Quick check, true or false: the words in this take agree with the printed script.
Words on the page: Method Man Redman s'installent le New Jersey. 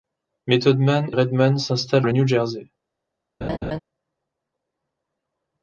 true